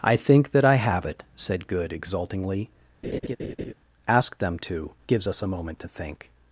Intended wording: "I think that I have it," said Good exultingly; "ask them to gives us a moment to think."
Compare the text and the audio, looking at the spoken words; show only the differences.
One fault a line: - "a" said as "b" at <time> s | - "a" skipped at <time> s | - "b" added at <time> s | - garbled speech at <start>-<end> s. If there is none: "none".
none